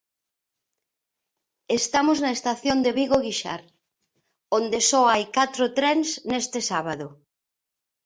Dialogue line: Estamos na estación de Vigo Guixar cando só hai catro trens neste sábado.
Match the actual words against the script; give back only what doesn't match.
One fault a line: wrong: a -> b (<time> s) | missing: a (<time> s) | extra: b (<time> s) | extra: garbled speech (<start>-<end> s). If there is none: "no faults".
wrong: cando -> onde (4.6 s)